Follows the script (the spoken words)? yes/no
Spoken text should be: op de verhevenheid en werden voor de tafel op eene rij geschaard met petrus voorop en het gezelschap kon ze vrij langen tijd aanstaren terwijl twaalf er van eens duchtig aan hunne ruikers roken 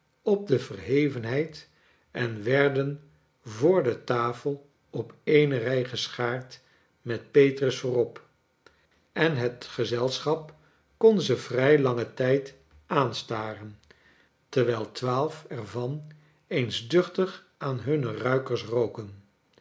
yes